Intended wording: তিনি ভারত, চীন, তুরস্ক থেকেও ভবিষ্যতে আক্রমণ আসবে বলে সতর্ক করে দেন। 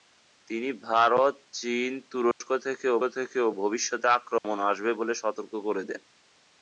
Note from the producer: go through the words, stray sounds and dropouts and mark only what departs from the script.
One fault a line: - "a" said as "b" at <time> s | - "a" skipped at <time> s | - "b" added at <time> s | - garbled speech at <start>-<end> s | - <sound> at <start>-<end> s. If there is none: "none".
- dropout at 2.3-2.4 s
- "থেকেও" added at 3.1 s
- dropout at 4.4-4.4 s